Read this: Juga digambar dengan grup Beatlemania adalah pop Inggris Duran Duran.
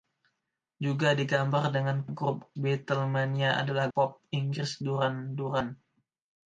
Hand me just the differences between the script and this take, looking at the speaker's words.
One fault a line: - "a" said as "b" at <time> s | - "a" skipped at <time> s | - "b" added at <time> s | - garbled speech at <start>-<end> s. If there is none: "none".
none